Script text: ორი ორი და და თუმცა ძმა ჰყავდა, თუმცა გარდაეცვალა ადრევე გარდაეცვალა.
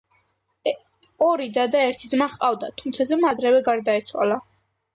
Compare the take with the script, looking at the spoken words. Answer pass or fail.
fail